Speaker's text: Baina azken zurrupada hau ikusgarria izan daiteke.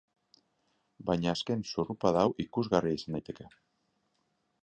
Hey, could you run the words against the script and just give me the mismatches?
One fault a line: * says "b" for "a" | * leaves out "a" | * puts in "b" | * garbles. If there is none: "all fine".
all fine